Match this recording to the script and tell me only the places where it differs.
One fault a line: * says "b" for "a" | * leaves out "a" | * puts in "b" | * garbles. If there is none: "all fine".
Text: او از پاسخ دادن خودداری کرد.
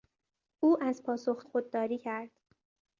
* leaves out "دادن"